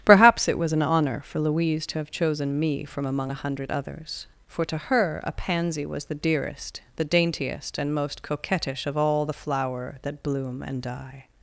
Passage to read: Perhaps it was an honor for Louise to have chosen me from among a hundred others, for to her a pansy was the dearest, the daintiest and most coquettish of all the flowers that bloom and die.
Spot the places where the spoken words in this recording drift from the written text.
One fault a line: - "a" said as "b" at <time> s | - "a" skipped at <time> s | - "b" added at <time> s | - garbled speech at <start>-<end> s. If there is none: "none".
- "flowers" said as "flower" at 9.3 s